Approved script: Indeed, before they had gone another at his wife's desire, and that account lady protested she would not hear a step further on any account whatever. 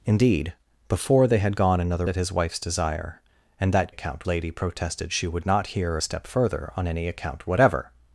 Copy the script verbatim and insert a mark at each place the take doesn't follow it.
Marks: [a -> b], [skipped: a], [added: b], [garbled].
Indeed, before they had gone another at his wife's desire, and that account lady protested she would not hear a step further on any account whatever.